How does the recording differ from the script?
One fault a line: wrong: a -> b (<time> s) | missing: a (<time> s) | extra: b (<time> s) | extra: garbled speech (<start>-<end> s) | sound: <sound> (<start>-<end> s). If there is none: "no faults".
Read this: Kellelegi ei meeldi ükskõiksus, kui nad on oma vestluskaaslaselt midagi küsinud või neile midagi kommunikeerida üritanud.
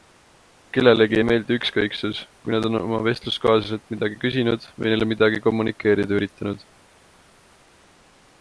no faults